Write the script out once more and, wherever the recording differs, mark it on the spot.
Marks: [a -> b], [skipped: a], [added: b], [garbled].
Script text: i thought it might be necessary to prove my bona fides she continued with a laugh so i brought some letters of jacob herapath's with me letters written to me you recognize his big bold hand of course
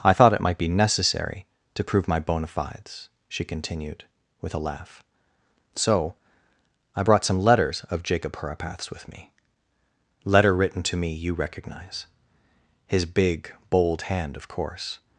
i thought it might be necessary to prove my bona fides she continued with a laugh so i brought some letters of jacob herapath's with me [letters -> letter] written to me you recognize his big bold hand of course